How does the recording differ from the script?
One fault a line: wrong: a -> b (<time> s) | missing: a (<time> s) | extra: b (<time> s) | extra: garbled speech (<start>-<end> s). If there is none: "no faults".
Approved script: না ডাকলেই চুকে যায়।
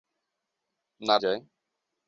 missing: ডাকলেই চুকে (1.1 s)